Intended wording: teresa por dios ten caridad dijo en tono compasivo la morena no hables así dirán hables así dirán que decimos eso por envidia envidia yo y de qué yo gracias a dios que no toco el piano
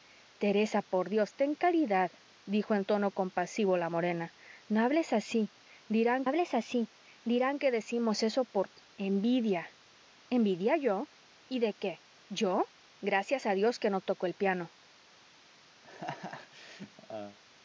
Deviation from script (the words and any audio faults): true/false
true